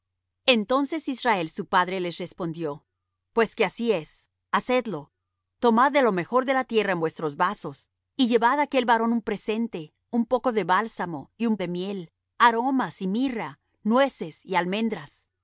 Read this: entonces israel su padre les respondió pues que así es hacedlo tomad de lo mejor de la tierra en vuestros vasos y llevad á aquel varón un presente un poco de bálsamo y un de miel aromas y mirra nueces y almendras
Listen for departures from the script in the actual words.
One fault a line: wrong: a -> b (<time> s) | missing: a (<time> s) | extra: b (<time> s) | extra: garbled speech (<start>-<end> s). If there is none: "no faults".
no faults